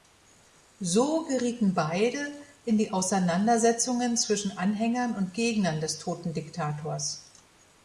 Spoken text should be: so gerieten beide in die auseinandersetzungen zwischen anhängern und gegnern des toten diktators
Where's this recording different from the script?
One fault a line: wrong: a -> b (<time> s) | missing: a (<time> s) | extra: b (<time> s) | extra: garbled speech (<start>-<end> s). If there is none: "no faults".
no faults